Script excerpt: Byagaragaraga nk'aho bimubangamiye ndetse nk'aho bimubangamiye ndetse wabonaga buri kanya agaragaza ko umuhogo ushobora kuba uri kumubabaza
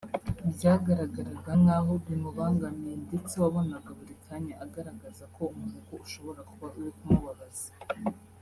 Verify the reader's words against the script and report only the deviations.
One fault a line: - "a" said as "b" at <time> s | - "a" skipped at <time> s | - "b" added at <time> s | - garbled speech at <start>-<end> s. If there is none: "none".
- "nk'aho bimubangamiye ndetse" skipped at 3.3 s